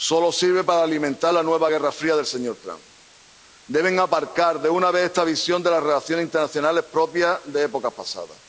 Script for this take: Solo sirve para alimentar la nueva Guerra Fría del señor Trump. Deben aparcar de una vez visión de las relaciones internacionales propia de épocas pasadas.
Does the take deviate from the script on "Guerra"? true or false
false